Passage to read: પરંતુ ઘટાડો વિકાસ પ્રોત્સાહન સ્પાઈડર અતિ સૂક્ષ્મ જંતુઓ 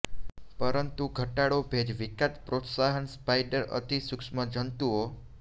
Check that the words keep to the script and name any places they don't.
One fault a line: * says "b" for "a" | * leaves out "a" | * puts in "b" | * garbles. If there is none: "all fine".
* puts in "ભેજ"